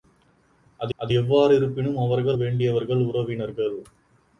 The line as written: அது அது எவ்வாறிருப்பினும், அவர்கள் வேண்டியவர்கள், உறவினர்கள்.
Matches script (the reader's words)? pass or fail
pass